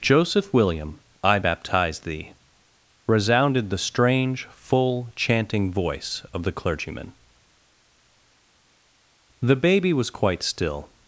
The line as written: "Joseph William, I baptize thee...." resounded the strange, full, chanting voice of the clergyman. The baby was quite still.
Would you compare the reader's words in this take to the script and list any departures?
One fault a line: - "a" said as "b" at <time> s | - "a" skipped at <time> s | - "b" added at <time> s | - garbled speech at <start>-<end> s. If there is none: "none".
none